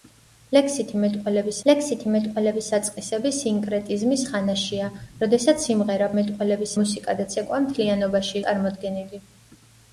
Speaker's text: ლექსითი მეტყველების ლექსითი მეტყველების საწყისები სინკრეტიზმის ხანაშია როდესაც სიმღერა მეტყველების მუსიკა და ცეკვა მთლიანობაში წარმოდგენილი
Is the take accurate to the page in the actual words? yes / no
yes